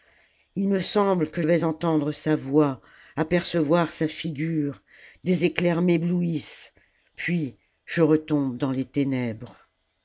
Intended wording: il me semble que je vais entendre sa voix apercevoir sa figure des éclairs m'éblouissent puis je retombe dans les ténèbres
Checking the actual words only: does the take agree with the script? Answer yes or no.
no